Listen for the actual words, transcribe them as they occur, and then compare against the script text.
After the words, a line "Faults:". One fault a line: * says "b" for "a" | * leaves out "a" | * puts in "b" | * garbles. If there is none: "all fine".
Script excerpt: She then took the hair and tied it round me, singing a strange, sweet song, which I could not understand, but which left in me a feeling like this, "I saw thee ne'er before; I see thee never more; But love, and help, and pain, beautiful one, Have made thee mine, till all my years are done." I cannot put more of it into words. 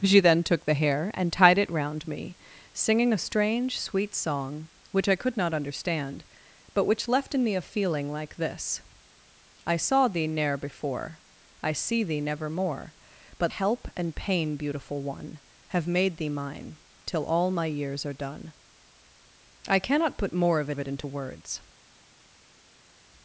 She then took the hair and tied it round me, singing a strange, sweet song, which I could not understand, but which left in me a feeling like this, "I saw thee ne'er before; I see thee never more; But help, and pain, beautiful one, Have made thee mine, till all my years are done." I cannot put more of of it into words.
Faults:
* leaves out "love and"
* puts in "of"